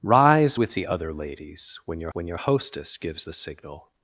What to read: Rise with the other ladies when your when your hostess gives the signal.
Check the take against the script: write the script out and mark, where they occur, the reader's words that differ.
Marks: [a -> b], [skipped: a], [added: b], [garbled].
Rise with the other ladies when your when your hostess gives the signal.